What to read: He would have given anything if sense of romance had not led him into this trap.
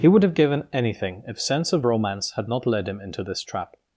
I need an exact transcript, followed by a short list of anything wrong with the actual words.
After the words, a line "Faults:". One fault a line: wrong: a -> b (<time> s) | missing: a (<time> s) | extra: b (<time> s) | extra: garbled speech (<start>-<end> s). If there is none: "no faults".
He would have given anything if sense of romance had not led him into this trap.
Faults:
no faults